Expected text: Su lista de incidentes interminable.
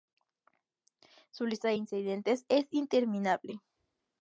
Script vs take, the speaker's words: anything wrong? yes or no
yes